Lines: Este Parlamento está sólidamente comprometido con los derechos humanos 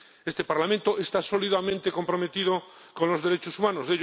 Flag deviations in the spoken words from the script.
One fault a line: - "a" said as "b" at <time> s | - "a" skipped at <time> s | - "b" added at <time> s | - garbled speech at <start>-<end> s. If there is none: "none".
none